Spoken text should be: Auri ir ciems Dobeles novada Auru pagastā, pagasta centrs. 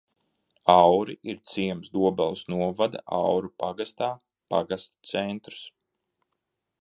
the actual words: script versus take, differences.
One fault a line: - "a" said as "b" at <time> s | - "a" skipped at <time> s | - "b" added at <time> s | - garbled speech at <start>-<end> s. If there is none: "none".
none